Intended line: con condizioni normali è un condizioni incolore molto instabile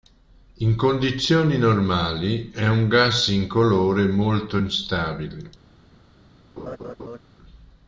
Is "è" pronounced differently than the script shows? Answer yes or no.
no